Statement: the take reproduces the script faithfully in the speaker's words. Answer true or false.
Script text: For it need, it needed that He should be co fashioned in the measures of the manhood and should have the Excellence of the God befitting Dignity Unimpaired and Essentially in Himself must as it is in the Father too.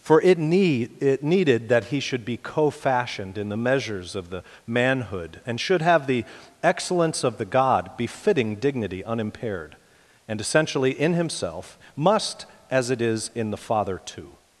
true